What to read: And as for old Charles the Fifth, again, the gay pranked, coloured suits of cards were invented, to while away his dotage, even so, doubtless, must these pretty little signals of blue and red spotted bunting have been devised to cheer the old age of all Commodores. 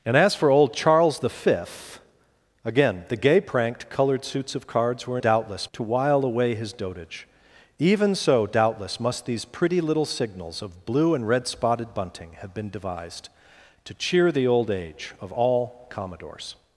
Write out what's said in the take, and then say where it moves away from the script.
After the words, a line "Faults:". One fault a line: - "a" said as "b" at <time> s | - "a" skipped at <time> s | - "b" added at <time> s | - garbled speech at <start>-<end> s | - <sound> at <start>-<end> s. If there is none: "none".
And as for old Charles the Fifth, again, the gay pranked, coloured suits of cards were doubtless, to while away his dotage, even so, doubtless, must these pretty little signals of blue and red spotted bunting have been devised to cheer the old age of all Commodores.
Faults:
- "invented" said as "doubtless" at 5.2 s